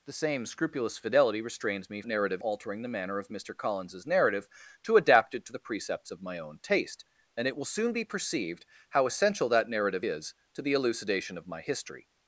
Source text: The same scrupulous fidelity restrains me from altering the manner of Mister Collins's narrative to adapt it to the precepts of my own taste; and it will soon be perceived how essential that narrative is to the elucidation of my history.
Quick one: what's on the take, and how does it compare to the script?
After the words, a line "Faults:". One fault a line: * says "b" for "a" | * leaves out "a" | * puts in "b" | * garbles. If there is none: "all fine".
The same scrupulous fidelity restrains me narrative altering the manner of Mister Collins's narrative to adapt it to the precepts of my own taste; and it will soon be perceived how essential that narrative is to the elucidation of my history.
Faults:
* says "narrative" for "from"